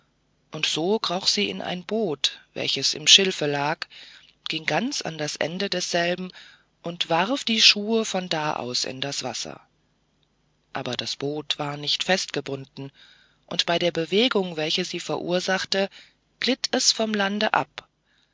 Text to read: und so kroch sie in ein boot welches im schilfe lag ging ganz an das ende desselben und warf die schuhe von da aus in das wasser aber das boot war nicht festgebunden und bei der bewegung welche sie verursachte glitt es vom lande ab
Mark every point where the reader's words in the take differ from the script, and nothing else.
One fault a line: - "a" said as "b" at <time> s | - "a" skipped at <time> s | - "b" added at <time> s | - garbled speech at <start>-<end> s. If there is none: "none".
none